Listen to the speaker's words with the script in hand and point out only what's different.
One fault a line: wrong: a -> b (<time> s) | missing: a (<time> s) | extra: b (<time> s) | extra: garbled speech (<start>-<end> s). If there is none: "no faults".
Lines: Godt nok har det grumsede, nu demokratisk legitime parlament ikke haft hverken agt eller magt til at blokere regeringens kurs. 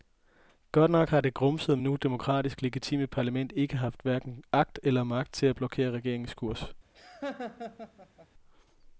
no faults